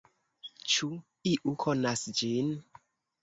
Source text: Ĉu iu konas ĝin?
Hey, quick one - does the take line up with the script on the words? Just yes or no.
yes